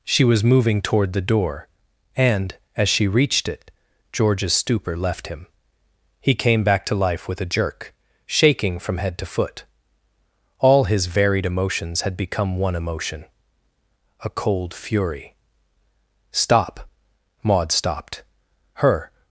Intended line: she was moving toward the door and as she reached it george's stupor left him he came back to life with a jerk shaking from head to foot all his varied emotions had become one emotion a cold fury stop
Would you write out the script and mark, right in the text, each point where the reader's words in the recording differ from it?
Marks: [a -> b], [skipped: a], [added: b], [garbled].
she was moving toward the door and as she reached it george's stupor left him he came back to life with a jerk shaking from head to foot all his varied emotions had become one emotion a cold fury stop [added: maud stopped her]